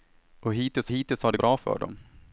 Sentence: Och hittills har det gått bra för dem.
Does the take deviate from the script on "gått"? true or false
true